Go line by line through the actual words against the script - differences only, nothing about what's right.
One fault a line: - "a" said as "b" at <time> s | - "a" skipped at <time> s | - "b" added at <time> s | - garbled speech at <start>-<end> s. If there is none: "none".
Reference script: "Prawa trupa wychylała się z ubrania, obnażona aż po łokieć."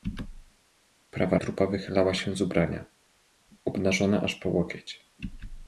none